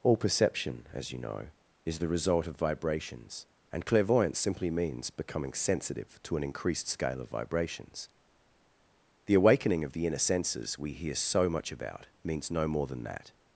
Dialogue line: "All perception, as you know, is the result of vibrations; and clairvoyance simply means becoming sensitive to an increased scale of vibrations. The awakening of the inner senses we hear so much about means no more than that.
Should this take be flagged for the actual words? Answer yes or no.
no